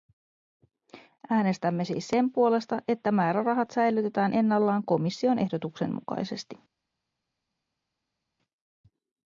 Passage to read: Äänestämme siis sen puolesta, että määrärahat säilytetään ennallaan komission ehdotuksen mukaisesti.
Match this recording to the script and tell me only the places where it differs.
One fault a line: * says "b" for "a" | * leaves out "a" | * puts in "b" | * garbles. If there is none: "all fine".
all fine